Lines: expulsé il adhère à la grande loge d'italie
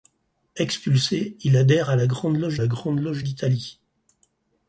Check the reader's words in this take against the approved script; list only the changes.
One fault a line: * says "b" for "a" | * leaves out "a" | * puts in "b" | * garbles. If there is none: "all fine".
* puts in "la grande loge"